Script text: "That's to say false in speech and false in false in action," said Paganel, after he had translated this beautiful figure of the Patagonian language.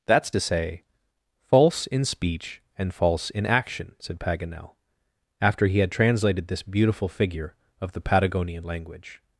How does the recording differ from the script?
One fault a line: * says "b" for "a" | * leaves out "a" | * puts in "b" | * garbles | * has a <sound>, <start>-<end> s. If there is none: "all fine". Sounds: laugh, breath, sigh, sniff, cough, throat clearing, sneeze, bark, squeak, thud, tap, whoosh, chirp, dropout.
* leaves out "false in"